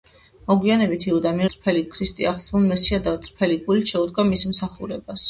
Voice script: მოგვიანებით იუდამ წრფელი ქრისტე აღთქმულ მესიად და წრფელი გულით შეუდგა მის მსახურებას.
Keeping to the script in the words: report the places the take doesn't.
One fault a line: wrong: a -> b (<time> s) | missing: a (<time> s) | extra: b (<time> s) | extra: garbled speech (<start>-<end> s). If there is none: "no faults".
no faults